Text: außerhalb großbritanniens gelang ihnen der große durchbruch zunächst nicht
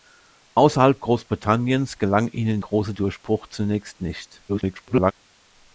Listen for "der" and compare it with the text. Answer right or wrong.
wrong